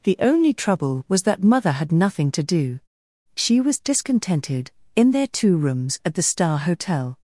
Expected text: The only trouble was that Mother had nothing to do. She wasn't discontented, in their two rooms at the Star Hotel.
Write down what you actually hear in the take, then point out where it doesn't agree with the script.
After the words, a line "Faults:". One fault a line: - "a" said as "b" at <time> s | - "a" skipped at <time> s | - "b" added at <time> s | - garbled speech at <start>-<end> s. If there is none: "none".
The only trouble was that Mother had nothing to do. She was discontented, in their two rooms at the Star Hotel.
Faults:
- "wasn't" said as "was" at 3.6 s